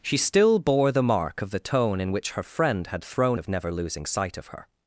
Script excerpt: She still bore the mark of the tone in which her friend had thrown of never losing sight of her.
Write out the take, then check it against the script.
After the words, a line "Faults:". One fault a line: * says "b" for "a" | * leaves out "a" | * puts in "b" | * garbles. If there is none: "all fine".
She still bore the mark of the tone in which her friend had thrown of never losing sight of her.
Faults:
all fine